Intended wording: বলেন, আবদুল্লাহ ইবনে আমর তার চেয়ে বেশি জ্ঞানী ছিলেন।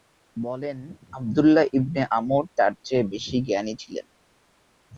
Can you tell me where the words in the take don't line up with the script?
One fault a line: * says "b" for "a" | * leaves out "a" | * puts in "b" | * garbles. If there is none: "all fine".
all fine